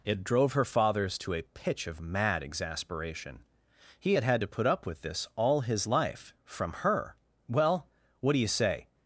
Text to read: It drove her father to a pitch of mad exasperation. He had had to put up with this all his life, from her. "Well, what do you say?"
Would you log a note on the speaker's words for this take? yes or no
yes